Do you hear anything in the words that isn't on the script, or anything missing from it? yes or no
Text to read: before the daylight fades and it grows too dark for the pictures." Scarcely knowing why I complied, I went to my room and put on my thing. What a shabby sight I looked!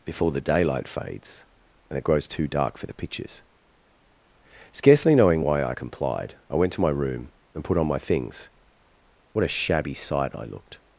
yes